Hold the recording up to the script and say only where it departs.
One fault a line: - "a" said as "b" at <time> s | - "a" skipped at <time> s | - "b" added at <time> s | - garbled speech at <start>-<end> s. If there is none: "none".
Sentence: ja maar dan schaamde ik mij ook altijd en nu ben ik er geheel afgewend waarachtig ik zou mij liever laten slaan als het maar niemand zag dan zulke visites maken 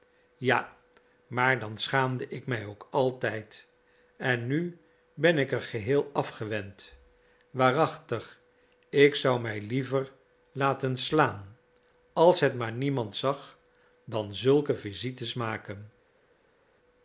none